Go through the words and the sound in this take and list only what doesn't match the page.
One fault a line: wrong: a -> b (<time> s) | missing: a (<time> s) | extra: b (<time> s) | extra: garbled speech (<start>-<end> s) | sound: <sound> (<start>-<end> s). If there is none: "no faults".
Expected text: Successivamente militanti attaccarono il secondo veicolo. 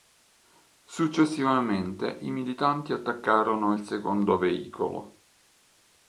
extra: i (2.2 s)